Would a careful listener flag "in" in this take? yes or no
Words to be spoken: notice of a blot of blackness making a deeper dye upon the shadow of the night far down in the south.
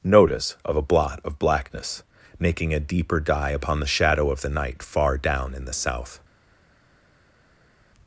no